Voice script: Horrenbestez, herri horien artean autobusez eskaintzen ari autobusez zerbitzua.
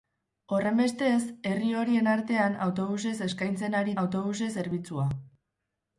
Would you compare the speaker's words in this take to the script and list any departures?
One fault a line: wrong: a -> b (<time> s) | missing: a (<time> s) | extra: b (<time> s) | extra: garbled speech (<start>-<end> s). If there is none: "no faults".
no faults